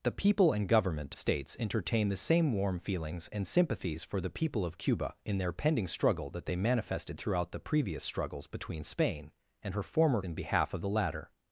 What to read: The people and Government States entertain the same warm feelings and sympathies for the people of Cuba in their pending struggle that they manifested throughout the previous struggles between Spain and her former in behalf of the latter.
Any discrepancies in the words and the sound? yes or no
no